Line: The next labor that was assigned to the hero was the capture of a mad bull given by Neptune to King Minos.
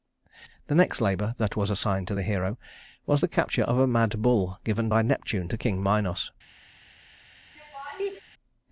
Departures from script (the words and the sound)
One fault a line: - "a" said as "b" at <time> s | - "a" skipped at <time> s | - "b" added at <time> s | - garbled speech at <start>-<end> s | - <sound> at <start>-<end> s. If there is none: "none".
- laugh at 7.6-8.2 s